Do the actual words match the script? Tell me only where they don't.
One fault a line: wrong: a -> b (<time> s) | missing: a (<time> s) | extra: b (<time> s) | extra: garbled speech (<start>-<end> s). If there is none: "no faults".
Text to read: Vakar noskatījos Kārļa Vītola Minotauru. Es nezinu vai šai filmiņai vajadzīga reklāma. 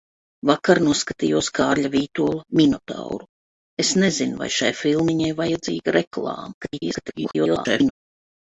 extra: garbled speech (6.6-7.9 s)